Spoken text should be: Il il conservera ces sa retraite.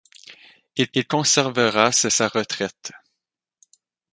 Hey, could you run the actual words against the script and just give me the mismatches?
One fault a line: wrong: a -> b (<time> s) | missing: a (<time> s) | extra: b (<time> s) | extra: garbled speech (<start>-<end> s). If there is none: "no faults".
no faults